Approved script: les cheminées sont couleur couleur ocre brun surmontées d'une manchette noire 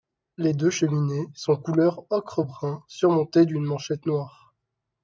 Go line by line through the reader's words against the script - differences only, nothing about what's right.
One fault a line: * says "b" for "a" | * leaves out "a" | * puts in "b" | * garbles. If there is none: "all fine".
* puts in "deux"
* leaves out "couleur"